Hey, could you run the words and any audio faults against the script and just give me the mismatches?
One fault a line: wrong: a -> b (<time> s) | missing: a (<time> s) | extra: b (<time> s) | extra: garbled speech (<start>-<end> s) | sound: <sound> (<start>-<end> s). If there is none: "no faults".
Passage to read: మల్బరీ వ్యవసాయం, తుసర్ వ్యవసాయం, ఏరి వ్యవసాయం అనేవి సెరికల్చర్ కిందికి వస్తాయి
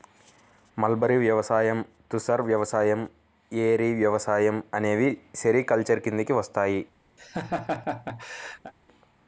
sound: laugh (7.2-8.7 s)